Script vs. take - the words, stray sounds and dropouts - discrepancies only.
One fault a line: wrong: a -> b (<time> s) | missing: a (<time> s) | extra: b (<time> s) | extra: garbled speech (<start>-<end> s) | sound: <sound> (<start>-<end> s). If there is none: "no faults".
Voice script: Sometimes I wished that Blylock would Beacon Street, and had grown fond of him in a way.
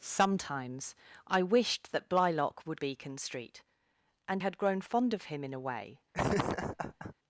sound: laugh (6.1-7.1 s)